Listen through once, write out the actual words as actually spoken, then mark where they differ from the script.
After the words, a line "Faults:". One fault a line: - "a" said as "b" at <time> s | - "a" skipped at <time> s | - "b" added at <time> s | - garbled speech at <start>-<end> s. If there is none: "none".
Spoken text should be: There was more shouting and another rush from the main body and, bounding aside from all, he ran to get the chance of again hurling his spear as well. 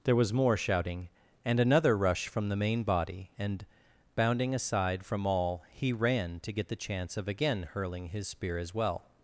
There was more shouting and another rush from the main body and, bounding aside from all, he ran to get the chance of again hurling his spear as well.
Faults:
none